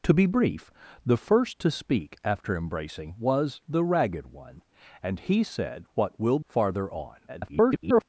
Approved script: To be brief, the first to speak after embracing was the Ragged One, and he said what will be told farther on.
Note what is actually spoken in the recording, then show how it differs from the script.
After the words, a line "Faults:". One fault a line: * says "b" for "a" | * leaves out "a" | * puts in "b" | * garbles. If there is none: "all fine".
To be brief, the first to speak after embracing was the Ragged One, and he said what will farther on. [garbled]
Faults:
* leaves out "be told"
* garbles